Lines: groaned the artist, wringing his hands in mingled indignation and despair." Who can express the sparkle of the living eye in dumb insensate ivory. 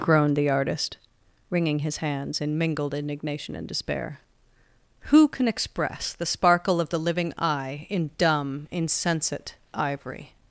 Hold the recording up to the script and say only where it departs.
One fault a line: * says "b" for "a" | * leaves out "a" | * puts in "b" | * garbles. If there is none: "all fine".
all fine